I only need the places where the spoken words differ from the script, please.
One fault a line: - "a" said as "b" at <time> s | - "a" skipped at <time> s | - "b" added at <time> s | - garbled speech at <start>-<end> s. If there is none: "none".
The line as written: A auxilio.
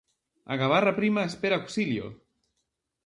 - "gabarra prima espera" added at 0.6 s